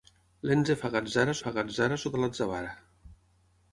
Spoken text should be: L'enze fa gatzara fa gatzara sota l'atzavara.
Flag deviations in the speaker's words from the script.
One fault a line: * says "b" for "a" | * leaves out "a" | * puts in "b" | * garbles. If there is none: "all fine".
all fine